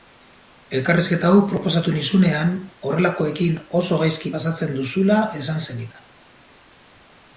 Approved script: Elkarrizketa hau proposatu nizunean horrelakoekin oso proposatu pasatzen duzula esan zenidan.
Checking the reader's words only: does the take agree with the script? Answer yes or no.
no